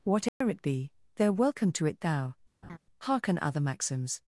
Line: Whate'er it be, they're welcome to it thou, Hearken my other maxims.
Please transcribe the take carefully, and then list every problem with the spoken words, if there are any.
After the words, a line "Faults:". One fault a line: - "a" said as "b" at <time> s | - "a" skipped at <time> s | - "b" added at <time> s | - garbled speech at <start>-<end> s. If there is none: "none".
Whate'er it be, they're welcome to it thou, Hearken other maxims.
Faults:
- "my" skipped at 3.4 s